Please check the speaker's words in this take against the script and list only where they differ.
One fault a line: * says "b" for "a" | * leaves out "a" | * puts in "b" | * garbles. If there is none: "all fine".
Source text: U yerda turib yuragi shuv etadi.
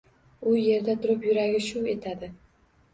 all fine